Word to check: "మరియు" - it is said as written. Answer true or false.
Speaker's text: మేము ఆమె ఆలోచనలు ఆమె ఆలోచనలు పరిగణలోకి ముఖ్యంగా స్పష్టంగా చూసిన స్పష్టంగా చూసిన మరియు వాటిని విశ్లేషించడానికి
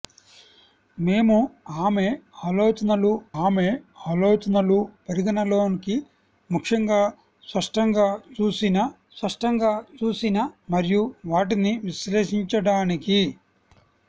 true